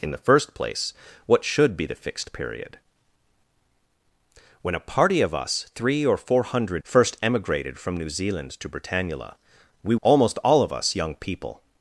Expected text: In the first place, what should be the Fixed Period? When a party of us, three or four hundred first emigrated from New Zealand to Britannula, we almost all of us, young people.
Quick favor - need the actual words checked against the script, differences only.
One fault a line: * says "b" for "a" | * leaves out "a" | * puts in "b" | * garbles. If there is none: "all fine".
all fine